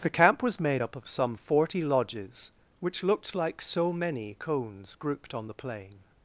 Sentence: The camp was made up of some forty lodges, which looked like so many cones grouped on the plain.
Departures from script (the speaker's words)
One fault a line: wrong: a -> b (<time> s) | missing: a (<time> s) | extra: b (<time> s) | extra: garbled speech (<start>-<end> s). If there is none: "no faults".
no faults